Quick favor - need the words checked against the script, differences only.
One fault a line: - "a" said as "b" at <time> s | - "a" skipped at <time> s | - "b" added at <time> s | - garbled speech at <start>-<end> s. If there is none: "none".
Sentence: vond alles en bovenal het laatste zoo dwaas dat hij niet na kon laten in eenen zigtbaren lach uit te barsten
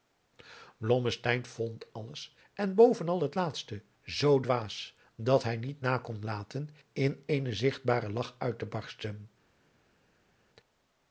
none